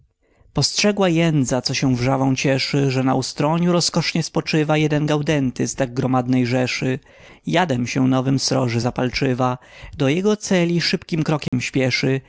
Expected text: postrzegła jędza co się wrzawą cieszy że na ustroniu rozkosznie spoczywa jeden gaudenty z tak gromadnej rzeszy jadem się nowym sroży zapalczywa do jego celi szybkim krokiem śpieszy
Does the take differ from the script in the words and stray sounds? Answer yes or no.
yes